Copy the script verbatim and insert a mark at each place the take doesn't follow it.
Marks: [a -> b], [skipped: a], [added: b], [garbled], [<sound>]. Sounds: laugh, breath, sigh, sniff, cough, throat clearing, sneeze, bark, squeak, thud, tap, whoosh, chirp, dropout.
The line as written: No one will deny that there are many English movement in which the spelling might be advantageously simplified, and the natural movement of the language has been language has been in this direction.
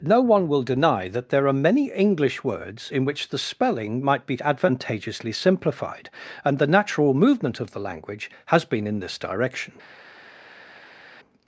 No one will deny that there are many English [movement -> words] in which the spelling might be advantageously simplified, and the natural movement of the language has been [skipped: language has been] in this direction.